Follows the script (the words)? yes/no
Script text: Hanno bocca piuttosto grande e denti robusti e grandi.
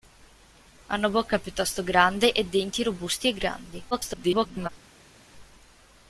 no